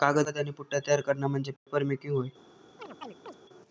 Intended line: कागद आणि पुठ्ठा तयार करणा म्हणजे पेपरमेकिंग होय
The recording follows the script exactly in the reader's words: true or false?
true